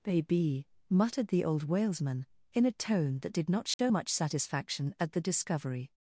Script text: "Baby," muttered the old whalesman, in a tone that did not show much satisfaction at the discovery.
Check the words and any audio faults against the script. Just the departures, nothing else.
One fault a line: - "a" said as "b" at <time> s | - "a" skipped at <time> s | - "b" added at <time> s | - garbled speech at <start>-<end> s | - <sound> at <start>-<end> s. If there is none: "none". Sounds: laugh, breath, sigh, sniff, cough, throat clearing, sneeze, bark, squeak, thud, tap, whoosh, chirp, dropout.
- dropout at 3.7-3.8 s